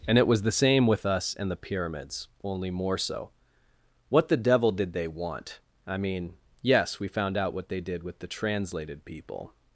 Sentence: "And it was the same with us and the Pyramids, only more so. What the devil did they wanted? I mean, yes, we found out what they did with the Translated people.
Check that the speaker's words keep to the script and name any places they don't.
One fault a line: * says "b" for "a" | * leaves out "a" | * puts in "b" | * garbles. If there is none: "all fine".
* says "want" for "wanted"